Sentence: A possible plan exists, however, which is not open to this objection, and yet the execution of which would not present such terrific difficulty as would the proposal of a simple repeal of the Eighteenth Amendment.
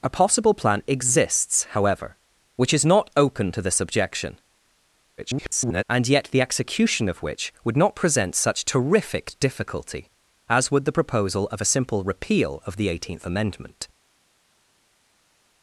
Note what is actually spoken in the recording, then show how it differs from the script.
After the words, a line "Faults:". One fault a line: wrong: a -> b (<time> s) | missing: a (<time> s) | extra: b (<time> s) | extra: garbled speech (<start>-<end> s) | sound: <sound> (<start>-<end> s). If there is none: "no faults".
A possible plan exists, however, which is not open to this objection, [garbled] and yet the execution of which would not present such terrific difficulty as would the proposal of a simple repeal of the Eighteenth Amendment.
Faults:
extra: garbled speech (5.2-5.8 s)